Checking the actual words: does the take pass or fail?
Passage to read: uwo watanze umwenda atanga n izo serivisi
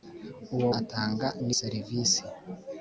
fail